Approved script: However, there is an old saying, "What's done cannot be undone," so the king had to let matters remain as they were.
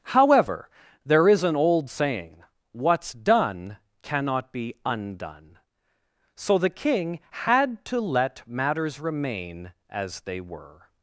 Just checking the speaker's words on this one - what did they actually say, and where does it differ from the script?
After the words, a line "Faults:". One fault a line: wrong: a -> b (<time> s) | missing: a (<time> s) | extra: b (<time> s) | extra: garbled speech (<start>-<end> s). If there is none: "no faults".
However, there is an old saying, "What's done cannot be undone," so the king had to let matters remain as they were.
Faults:
no faults